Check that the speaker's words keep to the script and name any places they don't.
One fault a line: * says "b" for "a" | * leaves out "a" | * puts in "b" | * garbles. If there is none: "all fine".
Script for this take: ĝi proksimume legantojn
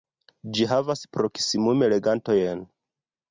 * puts in "havas"